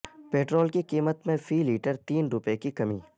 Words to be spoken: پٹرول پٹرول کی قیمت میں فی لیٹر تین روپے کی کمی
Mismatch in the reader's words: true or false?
true